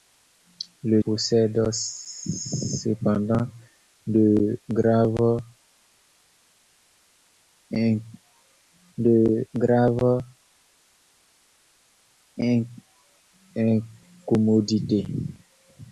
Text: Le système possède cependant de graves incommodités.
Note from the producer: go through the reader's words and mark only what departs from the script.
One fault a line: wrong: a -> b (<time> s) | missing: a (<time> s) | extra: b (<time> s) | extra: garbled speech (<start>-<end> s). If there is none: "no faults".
missing: système (1.0 s)
extra: de graves (9.0 s)